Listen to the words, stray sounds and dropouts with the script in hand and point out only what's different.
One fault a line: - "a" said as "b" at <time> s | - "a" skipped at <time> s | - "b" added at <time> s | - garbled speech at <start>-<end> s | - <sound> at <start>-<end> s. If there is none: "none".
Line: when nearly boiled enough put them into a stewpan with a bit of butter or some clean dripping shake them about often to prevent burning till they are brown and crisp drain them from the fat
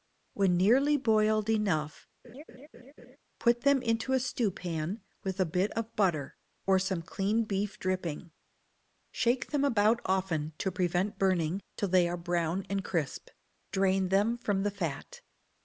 - laugh at 2.2-3.2 s
- "beef" added at 7.4 s